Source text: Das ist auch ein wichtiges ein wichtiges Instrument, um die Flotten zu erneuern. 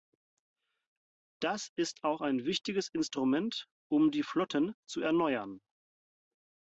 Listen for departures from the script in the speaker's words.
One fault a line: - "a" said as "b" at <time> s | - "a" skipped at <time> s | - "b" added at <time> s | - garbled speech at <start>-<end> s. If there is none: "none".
- "ein wichtiges" skipped at 2.9 s